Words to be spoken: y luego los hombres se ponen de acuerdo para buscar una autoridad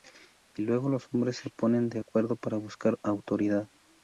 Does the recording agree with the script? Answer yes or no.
no